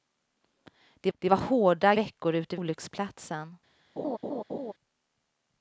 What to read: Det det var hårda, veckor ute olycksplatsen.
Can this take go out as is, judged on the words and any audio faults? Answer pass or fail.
fail